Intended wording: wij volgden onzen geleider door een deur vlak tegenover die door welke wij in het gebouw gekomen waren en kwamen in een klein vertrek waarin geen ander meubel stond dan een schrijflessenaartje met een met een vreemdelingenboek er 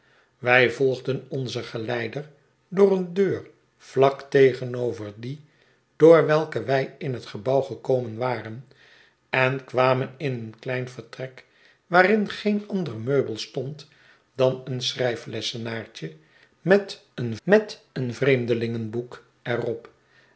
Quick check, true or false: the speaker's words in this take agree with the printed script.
true